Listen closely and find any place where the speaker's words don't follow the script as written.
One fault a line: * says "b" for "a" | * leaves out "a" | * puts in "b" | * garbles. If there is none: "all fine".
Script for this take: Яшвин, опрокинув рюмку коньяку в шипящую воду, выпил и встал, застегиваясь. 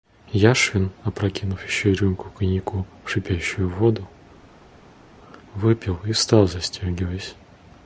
* puts in "еще"